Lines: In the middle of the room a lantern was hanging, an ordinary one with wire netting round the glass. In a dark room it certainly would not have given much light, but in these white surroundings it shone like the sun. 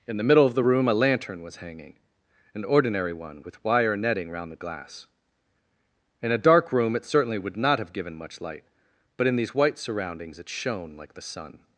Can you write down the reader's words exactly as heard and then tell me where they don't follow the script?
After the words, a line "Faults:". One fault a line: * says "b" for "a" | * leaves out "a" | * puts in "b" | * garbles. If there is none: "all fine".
In the middle of the room a lantern was hanging, an ordinary one with wire netting round the glass. In a dark room it certainly would not have given much light, but in these white surroundings it shone like the sun.
Faults:
all fine